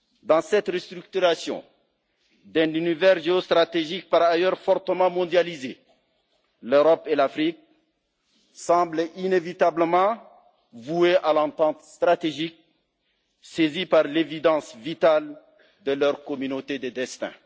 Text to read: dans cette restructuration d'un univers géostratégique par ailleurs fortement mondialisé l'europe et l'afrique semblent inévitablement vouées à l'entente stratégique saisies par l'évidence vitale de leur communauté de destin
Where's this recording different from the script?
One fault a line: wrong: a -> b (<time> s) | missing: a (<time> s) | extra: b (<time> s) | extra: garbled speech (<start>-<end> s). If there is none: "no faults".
no faults